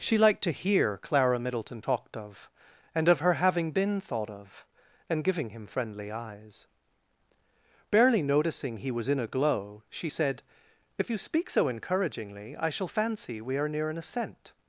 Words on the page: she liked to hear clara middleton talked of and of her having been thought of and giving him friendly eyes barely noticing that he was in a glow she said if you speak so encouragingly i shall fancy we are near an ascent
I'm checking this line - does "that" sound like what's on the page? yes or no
no